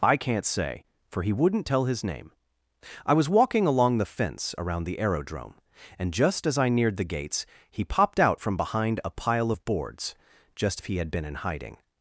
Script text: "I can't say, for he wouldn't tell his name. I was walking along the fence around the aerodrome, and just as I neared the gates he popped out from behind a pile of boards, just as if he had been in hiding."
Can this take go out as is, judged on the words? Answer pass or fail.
fail